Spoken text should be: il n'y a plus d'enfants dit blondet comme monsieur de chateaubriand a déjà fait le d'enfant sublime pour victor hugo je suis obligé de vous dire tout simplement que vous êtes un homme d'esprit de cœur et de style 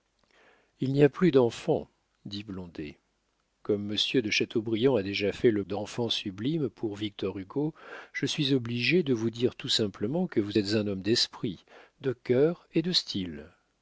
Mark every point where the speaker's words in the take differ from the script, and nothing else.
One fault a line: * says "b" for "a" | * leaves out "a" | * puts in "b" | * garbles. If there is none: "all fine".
all fine